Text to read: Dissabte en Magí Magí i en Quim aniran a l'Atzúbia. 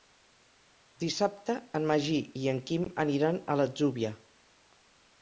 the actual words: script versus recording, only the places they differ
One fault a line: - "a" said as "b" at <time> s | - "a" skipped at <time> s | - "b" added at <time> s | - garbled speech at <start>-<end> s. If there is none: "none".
- "Magí" skipped at 2.2 s